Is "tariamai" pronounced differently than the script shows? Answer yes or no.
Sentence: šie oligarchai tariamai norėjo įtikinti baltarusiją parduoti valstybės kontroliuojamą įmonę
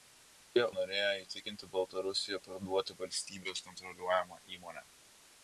yes